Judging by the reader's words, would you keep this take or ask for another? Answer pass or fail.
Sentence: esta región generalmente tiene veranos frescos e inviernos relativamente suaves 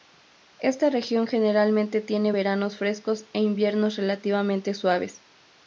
pass